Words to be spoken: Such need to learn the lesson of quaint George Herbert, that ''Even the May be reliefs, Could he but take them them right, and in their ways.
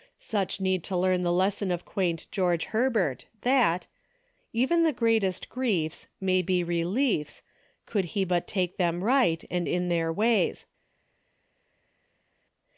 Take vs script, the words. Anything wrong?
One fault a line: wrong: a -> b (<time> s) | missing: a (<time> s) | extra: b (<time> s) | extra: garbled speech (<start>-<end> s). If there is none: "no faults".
extra: greatest griefs (4.9 s)
missing: them (9.0 s)